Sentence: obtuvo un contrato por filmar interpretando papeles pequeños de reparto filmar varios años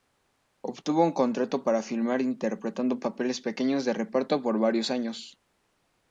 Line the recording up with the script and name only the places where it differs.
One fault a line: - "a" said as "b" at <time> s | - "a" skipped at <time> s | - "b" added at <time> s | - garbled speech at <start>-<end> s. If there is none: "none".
- "por" said as "para" at 1.6 s
- "filmar" said as "por" at 4.4 s